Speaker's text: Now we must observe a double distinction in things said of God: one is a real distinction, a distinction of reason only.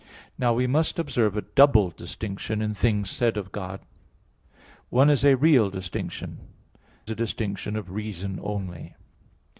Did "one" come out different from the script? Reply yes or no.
no